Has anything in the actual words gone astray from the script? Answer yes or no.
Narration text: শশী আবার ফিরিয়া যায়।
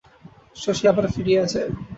no